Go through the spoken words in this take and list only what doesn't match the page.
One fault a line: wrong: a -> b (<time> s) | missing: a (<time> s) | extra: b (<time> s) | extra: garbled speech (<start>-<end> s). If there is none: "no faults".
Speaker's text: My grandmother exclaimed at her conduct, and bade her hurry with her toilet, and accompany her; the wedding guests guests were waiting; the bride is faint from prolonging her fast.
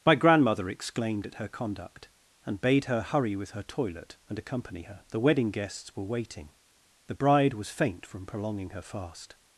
missing: guests (5.9 s)
wrong: is -> was (7.5 s)